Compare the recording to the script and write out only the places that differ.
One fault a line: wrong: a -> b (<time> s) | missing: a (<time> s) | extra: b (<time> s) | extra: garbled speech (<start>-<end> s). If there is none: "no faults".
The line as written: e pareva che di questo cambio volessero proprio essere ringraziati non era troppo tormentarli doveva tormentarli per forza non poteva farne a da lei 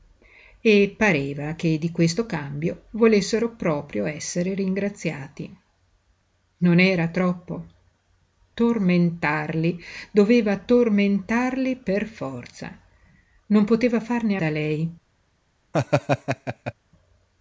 no faults